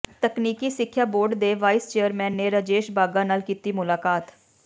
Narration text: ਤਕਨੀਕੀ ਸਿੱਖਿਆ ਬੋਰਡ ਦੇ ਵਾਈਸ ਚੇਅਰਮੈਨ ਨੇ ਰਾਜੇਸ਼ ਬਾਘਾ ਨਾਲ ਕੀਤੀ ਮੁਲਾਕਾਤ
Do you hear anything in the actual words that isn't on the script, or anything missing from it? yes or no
no